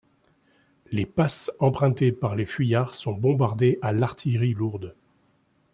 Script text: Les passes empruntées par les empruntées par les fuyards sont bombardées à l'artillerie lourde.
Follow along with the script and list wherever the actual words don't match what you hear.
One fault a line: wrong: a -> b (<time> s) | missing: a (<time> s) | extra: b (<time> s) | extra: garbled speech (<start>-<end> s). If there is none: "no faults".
missing: empruntées par les (2.5 s)